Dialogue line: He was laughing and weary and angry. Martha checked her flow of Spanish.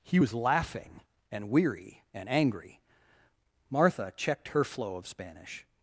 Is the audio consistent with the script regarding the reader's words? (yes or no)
yes